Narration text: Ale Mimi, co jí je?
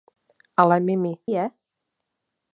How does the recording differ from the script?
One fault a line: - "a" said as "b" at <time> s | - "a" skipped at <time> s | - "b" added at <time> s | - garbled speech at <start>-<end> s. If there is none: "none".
- "co jí" skipped at 1.1 s